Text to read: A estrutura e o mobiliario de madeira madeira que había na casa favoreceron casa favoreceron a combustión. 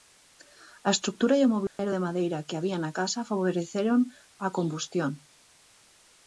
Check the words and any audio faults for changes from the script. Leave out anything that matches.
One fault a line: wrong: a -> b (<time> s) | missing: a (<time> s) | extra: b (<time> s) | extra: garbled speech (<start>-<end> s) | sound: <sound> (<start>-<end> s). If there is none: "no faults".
sound: dropout (1.7-1.8 s)
missing: madeira (2.4 s)
missing: casa favoreceron (4.0 s)